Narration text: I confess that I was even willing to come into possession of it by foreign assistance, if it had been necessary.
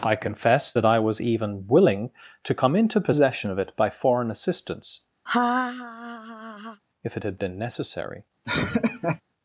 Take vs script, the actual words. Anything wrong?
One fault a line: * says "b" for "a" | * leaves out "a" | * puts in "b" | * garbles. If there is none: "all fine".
all fine